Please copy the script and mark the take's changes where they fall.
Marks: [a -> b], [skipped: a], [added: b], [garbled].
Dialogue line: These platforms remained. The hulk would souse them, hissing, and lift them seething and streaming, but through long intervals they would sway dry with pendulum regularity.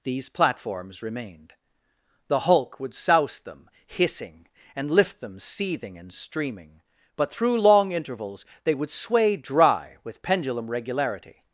These platforms remained. The hulk would souse them, hissing, and lift them seething and streaming, but through long intervals they would sway dry with pendulum regularity.